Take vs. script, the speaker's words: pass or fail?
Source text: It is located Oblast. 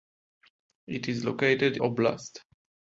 pass